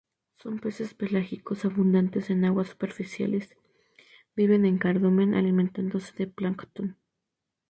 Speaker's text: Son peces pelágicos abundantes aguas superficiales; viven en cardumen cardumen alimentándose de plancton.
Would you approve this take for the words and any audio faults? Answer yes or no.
no